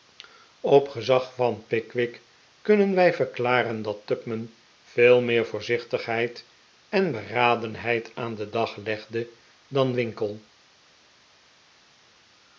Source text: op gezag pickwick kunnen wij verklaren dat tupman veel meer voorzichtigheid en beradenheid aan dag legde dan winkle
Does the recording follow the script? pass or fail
fail